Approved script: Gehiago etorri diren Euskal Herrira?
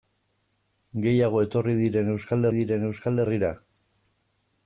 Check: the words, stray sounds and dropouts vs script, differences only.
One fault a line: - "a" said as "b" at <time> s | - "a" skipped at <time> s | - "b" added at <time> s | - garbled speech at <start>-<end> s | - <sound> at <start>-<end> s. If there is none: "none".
- "diren Euskal" added at 2.6 s